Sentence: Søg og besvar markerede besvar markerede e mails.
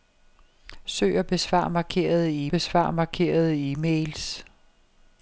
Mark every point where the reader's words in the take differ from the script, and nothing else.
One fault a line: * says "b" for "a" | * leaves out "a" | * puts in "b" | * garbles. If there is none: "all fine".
all fine